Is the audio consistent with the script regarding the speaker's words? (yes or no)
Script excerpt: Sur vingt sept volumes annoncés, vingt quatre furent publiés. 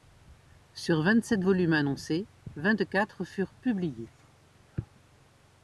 yes